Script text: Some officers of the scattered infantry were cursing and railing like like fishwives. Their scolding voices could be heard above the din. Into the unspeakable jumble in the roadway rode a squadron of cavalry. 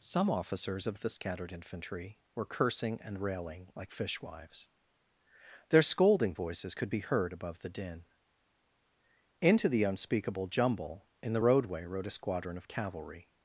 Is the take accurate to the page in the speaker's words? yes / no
no